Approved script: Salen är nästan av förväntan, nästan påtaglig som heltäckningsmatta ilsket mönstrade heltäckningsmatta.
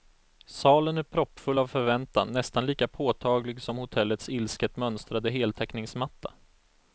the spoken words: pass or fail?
fail